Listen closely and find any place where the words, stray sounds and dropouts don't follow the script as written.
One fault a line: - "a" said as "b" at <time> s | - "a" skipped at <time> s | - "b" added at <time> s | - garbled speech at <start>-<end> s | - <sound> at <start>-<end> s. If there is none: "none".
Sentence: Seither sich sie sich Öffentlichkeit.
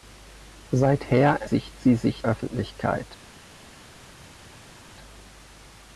none